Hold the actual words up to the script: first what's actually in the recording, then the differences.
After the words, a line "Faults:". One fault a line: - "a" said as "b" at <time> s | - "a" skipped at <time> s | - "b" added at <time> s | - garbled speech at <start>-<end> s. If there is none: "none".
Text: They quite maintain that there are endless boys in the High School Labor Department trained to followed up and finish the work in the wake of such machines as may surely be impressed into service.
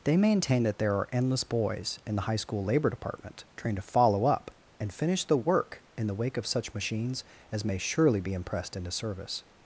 They maintain that there are endless boys in the High School Labor Department trained to follow up and finish the work in the wake of such machines as may surely be impressed into service.
Faults:
- "quite" skipped at 0.2 s
- "followed" said as "follow" at 3.8 s